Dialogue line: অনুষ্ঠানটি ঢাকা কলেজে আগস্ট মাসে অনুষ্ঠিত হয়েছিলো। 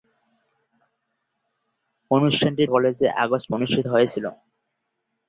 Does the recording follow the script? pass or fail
fail